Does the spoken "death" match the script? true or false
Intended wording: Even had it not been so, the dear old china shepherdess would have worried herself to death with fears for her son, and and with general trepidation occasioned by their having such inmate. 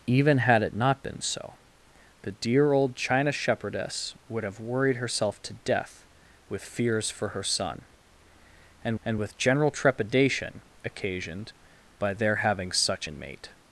true